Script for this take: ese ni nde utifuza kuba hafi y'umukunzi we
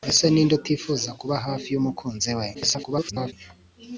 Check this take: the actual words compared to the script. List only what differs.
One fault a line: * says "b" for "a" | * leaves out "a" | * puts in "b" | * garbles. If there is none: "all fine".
* garbles